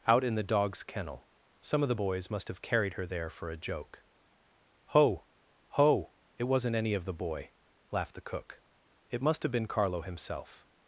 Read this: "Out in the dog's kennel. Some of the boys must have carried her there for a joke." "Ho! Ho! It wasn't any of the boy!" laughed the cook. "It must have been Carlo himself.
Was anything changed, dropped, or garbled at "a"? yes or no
no